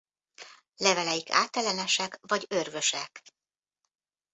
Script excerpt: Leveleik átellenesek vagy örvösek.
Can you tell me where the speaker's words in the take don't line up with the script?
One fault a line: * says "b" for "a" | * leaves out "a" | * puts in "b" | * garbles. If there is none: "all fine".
all fine